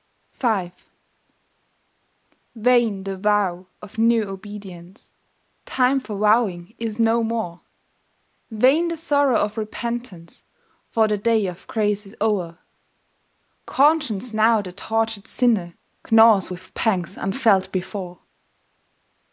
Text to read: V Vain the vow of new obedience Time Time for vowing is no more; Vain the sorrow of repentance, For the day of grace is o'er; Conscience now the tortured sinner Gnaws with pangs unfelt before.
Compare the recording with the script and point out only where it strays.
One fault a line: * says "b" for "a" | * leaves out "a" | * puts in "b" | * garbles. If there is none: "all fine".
* leaves out "Time"